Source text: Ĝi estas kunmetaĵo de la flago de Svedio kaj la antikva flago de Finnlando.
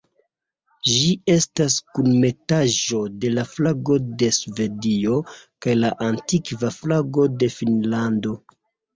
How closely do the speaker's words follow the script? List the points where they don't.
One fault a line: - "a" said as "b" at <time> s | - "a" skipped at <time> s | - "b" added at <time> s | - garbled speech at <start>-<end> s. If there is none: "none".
none